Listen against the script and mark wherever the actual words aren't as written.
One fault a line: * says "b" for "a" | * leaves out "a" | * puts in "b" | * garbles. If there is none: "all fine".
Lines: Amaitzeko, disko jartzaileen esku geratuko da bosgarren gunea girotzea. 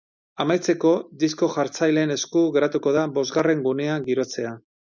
all fine